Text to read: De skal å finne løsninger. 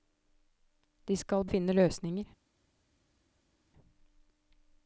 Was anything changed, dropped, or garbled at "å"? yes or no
no